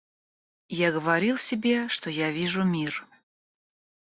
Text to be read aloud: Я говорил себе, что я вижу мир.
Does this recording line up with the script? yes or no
yes